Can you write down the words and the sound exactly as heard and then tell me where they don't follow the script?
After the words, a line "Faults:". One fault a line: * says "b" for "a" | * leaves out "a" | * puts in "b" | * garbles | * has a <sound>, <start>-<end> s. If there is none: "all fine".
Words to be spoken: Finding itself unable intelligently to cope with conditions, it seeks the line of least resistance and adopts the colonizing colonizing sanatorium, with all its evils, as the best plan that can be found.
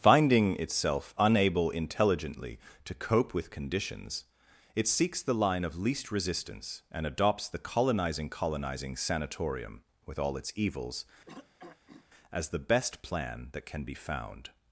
Finding itself unable intelligently to cope with conditions, it seeks the line of least resistance and adopts the colonizing colonizing sanatorium, with all its evils, as the best plan that can be found.
Faults:
* has a throat clearing, 11.3-12.1 s